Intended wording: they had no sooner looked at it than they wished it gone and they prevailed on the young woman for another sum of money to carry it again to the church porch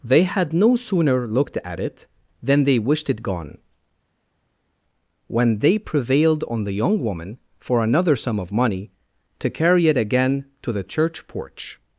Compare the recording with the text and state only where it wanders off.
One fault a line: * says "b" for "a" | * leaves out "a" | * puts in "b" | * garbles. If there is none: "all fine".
* says "when" for "and"